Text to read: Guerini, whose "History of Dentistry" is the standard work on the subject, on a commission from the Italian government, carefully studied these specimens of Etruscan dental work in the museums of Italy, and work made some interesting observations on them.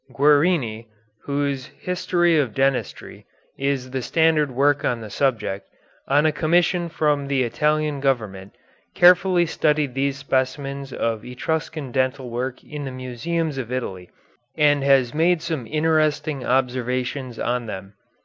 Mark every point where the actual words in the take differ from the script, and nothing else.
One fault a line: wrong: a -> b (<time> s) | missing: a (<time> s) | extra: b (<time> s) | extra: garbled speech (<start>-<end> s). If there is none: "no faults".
wrong: work -> has (14.8 s)